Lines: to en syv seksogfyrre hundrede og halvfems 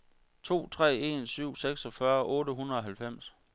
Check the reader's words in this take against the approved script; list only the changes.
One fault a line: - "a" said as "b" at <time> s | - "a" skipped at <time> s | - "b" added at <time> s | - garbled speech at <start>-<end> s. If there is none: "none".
- "tre" added at 0.7 s
- "otte" added at 2.2 s